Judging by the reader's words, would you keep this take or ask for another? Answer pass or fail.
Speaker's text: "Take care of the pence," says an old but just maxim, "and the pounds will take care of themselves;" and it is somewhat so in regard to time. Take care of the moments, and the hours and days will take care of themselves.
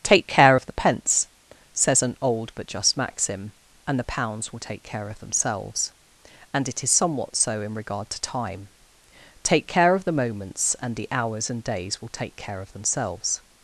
pass